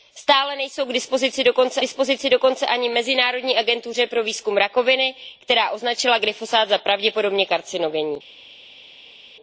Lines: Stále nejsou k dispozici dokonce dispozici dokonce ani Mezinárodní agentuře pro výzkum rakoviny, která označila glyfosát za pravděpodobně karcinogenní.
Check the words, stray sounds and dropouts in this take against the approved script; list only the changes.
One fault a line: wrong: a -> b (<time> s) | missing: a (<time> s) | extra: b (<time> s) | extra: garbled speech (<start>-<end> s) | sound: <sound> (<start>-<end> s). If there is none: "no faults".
no faults